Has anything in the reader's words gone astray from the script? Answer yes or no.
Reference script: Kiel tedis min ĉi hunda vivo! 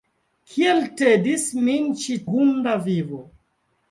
no